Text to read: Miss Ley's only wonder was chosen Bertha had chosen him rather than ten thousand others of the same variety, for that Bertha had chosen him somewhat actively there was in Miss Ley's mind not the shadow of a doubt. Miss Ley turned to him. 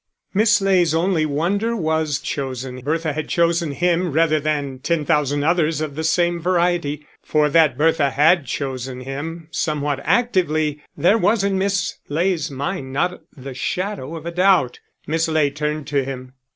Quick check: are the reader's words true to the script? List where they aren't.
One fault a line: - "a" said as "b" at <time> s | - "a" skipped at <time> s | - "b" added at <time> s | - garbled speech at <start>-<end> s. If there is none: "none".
none